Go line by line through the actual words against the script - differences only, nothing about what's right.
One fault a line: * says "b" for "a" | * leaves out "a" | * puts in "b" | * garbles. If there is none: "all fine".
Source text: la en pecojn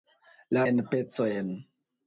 all fine